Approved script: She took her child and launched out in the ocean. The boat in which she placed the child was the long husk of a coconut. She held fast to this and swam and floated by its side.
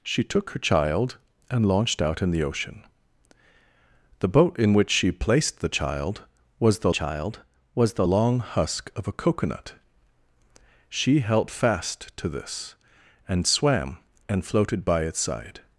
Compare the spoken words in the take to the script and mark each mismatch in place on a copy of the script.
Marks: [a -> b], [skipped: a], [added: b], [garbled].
She took her child and launched out in the ocean. The boat in which she placed the child was the [added: child was the] long husk of a coconut. She held fast to this and swam and floated by its side.